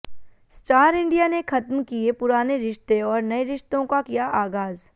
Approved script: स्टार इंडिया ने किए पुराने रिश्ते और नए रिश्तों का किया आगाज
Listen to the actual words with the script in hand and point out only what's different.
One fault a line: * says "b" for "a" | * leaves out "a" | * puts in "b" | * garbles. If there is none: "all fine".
* puts in "खत्म"